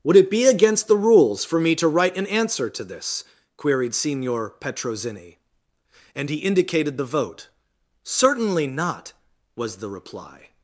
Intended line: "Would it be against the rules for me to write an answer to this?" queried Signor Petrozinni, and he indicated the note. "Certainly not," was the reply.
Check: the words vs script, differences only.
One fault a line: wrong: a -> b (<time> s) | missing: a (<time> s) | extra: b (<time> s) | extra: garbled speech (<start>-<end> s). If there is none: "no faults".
wrong: note -> vote (7.0 s)